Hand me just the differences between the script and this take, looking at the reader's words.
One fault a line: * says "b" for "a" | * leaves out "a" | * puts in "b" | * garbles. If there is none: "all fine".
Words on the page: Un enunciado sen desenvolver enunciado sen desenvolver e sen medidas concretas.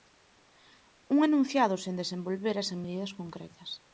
* leaves out "enunciado sen desenvolver"